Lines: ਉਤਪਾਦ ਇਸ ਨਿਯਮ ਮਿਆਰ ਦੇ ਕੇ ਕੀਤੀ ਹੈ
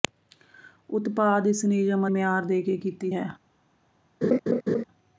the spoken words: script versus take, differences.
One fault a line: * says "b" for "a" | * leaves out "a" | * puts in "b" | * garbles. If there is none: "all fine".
all fine